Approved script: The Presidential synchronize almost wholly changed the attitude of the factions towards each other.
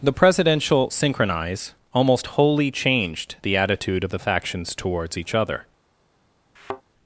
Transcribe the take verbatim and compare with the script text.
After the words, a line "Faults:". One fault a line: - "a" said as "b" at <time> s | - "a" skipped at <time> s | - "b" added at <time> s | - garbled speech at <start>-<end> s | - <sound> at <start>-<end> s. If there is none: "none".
The Presidential synchronize almost wholly changed the attitude of the factions towards each other.
Faults:
- thud at 6.6-6.8 s